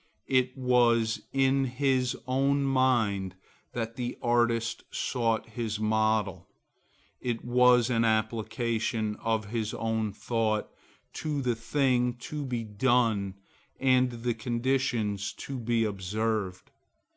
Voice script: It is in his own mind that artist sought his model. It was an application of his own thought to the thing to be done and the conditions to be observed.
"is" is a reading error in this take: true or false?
true